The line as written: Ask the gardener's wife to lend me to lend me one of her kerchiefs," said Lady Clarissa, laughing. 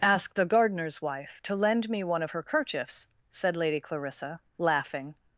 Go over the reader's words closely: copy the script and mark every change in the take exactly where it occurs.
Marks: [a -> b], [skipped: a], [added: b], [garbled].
Ask the gardener's wife to lend me [skipped: to lend me] one of her kerchiefs," said Lady Clarissa, laughing.